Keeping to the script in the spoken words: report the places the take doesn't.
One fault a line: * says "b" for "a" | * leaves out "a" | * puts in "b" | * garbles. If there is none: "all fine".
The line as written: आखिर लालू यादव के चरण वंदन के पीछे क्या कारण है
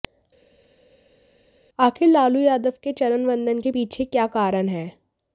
all fine